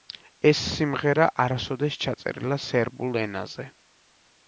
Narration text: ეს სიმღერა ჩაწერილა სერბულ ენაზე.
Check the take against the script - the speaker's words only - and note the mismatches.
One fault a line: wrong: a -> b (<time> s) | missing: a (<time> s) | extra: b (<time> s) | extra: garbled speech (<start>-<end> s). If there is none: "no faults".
extra: არასოდეს (1.4 s)